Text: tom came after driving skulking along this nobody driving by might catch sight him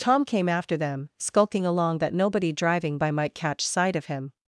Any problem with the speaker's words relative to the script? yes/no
yes